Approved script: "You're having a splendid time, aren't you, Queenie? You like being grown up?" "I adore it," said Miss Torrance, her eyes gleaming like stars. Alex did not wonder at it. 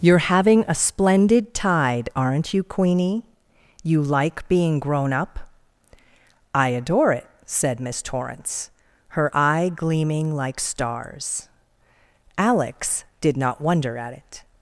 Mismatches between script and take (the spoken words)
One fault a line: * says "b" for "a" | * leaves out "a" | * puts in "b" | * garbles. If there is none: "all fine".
* says "tide" for "time"
* says "eye" for "eyes"